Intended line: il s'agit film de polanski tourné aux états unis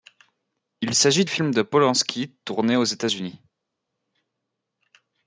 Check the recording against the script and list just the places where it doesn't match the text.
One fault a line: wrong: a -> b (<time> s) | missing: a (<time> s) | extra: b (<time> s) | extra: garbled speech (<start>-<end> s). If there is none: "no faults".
no faults